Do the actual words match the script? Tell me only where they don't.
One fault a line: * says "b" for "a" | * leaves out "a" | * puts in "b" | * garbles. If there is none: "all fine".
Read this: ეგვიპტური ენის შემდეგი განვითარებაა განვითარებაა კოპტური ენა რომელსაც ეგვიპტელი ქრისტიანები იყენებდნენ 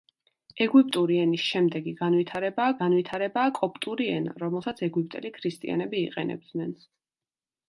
all fine